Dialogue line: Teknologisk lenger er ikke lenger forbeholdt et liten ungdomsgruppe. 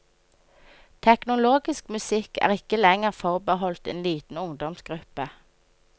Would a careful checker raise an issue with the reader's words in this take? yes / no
yes